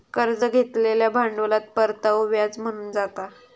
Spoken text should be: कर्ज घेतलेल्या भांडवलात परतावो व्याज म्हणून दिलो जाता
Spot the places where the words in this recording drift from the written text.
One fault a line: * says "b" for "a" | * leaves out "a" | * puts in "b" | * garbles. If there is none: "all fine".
* leaves out "दिलो"